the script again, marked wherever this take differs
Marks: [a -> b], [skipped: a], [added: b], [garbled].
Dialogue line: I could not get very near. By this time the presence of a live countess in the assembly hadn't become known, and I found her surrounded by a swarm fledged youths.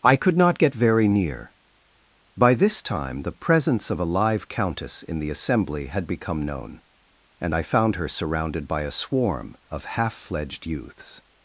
I could not get very near. By this time the presence of a live countess in the assembly [hadn't -> had] become known, and I found her surrounded by a swarm [added: of half] fledged youths.